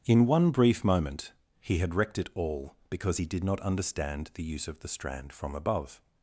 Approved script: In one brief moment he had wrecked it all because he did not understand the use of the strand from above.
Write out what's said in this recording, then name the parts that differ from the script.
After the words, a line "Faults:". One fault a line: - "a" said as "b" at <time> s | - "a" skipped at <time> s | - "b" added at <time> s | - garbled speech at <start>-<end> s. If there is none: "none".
In one brief moment he had wrecked it all because he did not understand the use of the strand from above.
Faults:
none